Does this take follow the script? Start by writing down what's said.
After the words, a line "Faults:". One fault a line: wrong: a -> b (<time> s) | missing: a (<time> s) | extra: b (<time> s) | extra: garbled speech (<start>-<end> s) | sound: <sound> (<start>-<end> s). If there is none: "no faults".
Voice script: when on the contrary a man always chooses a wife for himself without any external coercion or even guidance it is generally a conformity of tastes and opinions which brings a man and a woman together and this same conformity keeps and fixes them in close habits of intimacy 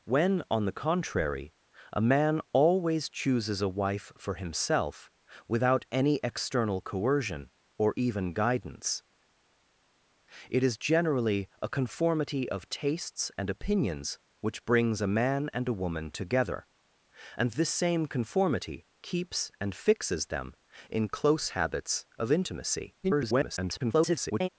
when on the contrary a man always chooses a wife for himself without any external coercion or even guidance it is generally a conformity of tastes and opinions which brings a man and a woman together and this same conformity keeps and fixes them in close habits of intimacy [garbled]
Faults:
extra: garbled speech (23.0-24.5 s)